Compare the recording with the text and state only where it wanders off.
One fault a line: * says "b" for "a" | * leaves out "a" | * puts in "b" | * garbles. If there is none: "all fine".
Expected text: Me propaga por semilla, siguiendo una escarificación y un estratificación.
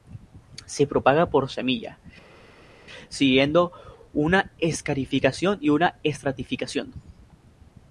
* says "Se" for "Me"
* says "una" for "un"